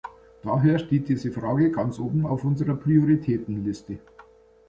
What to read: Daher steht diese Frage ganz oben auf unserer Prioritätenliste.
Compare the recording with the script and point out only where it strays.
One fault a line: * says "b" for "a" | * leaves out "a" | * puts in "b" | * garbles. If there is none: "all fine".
all fine